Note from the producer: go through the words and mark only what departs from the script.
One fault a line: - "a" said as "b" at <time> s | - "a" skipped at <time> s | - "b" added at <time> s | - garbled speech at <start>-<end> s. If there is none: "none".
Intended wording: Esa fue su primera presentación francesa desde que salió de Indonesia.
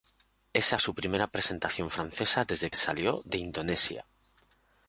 - "fue" skipped at 0.8 s
- "que" skipped at 2.7 s